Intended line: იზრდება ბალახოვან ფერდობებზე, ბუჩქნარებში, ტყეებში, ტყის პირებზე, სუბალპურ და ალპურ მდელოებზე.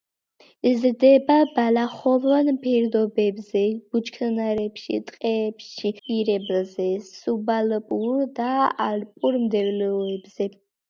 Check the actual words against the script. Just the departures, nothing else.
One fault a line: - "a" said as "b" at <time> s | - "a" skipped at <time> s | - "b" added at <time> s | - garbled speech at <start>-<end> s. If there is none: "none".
- "ტყის" skipped at 5.9 s